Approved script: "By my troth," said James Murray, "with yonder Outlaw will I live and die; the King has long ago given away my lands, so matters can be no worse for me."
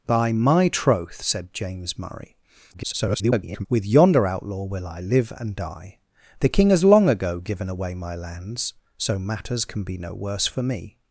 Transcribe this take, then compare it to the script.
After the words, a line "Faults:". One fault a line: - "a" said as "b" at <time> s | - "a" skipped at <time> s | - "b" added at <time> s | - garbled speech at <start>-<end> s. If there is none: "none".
"By my troth," said James Murray, [garbled] "with yonder Outlaw will I live and die; the King has long ago given away my lands, so matters can be no worse for me."
Faults:
- garbled speech at 2.7-3.7 s